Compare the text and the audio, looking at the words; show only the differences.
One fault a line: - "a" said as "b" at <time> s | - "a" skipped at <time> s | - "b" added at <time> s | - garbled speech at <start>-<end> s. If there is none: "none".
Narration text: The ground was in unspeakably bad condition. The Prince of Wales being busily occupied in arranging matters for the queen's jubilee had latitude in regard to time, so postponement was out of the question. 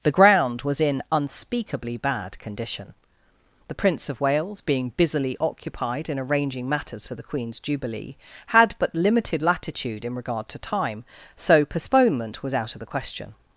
- "but limited" added at 8.8 s